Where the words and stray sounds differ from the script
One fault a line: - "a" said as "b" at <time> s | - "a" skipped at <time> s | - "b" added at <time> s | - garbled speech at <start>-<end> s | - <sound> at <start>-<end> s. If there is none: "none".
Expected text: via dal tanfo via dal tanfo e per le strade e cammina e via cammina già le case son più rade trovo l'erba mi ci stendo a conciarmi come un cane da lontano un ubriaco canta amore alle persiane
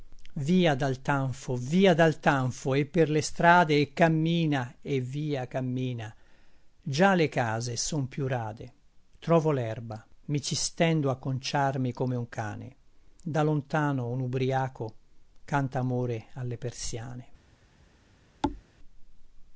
- thud at 18.4-18.6 s